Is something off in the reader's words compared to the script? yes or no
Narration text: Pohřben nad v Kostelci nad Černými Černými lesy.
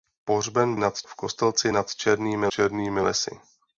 no